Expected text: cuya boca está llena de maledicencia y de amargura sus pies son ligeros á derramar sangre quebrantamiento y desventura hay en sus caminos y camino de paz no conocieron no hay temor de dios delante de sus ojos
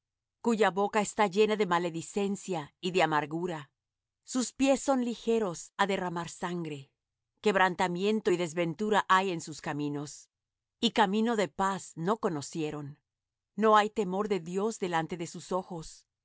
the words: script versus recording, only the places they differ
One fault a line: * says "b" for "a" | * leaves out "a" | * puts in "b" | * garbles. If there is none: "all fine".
all fine